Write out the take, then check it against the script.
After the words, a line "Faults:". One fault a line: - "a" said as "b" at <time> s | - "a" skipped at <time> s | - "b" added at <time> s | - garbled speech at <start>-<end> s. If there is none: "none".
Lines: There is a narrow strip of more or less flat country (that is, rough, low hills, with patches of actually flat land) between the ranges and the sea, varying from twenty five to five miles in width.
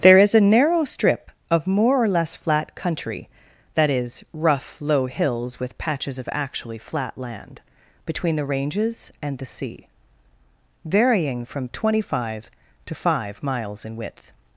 There is a narrow strip of more or less flat country (that is, rough, low hills, with patches of actually flat land) between the ranges and the sea, varying from twenty five to five miles in width.
Faults:
none